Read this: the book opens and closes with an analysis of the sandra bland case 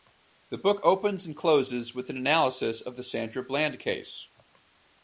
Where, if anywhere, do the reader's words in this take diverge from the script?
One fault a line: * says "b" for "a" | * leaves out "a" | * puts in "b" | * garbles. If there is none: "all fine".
all fine